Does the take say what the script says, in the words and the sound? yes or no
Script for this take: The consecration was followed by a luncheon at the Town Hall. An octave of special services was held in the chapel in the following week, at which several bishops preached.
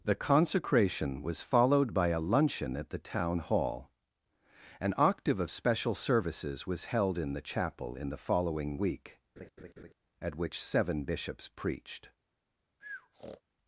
no